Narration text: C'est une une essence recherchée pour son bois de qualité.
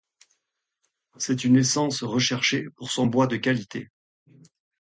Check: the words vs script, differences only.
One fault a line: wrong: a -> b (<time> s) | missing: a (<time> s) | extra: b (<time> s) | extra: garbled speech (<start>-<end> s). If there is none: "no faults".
missing: une (1.6 s)